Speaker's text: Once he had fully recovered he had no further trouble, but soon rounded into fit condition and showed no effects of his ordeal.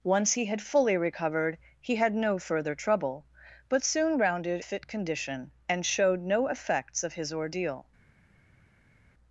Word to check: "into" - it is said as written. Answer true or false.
false